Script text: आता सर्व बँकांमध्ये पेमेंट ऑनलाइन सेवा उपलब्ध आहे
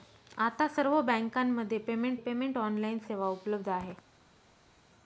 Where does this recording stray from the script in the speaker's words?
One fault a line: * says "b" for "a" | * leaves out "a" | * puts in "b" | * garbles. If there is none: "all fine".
* puts in "पेमेंट"